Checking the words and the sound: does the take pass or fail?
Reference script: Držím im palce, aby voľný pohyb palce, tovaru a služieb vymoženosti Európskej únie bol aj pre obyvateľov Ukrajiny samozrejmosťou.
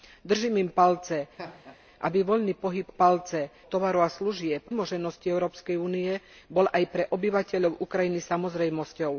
fail